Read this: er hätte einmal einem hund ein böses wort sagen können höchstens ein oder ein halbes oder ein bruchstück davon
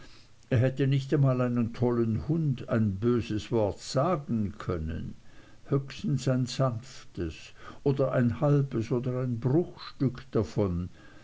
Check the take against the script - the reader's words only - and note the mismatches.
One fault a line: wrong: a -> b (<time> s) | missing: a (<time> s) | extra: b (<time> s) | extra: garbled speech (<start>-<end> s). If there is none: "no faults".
extra: nicht (0.9 s)
extra: tollen (1.7 s)
extra: sanftes (6.4 s)